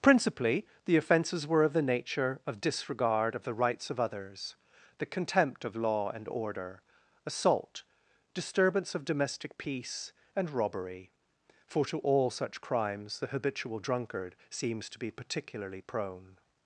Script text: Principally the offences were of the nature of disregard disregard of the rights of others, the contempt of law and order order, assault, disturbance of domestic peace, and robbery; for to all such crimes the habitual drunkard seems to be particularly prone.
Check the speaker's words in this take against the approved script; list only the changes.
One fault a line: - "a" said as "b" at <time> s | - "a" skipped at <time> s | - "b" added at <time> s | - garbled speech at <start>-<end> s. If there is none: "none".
- "disregard" skipped at 3.4 s
- "order" skipped at 6.8 s